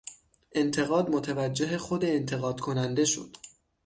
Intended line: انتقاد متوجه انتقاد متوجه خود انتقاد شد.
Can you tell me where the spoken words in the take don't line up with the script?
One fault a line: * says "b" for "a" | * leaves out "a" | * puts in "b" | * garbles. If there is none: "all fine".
* leaves out "انتقاد متوجه"
* puts in "کننده"